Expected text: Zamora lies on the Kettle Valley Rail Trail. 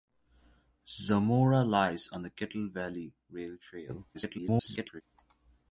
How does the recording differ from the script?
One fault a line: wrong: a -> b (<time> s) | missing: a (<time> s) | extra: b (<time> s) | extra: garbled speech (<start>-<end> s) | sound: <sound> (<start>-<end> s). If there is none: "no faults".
extra: garbled speech (4.1-5.0 s)